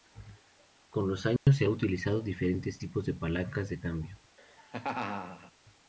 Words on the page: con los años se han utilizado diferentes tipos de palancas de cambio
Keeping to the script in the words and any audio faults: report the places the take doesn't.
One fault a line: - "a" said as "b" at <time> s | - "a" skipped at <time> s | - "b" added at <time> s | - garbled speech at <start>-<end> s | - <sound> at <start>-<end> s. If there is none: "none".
- dropout at 1.4-1.5 s
- laugh at 4.4-5.5 s